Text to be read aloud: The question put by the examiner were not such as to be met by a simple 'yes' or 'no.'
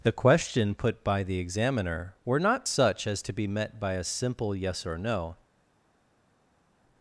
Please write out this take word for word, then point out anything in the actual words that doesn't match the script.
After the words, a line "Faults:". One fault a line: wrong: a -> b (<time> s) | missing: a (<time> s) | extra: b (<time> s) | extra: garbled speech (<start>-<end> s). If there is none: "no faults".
The question put by the examiner were not such as to be met by a simple 'yes' or 'no.'
Faults:
no faults